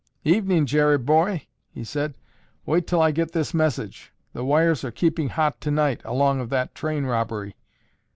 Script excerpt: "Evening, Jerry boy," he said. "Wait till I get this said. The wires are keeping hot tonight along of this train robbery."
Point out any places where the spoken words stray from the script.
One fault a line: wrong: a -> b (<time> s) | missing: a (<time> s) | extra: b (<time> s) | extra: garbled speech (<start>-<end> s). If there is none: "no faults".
wrong: said -> message (3.5 s)
wrong: this -> that (6.5 s)